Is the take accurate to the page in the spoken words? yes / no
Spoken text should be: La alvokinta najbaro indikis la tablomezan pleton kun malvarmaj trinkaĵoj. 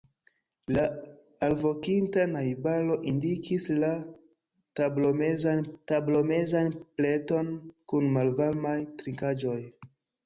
no